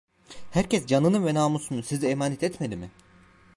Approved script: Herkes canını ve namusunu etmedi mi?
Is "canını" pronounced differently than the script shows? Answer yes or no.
no